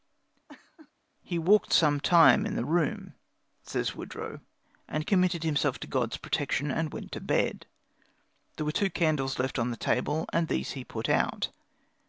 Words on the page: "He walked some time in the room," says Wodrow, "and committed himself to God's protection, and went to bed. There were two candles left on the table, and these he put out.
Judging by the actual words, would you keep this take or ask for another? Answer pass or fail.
pass